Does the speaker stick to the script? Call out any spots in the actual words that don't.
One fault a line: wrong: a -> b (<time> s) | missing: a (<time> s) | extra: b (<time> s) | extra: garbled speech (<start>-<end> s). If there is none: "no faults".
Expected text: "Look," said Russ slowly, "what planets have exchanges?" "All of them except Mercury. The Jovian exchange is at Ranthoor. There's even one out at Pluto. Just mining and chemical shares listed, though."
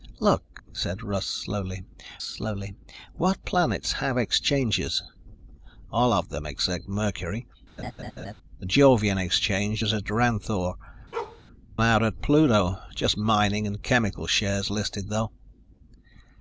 extra: slowly (2.2 s)
missing: There's even one (10.8 s)